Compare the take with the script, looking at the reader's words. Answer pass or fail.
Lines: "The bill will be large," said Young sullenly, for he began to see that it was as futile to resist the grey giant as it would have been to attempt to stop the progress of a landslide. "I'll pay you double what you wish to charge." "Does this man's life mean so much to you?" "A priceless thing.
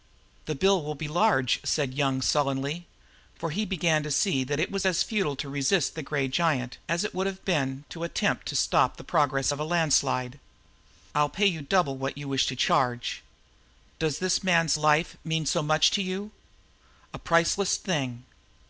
pass